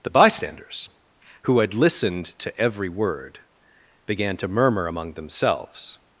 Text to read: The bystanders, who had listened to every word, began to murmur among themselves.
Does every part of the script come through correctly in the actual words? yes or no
yes